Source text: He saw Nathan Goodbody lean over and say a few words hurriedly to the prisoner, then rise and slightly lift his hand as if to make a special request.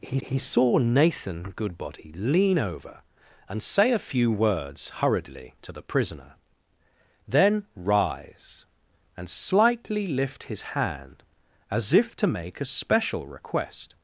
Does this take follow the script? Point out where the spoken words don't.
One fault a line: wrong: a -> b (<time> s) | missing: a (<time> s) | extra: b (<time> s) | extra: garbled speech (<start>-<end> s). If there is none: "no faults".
extra: he (0.2 s)